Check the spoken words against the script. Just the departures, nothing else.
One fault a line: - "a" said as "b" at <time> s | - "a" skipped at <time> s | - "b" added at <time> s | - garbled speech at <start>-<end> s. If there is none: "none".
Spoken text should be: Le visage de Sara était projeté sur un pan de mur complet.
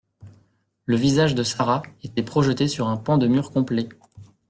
none